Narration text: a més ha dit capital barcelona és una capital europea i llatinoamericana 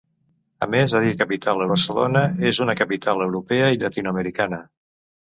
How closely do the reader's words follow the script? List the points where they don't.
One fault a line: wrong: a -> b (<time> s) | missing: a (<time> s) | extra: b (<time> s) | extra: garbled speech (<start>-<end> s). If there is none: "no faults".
no faults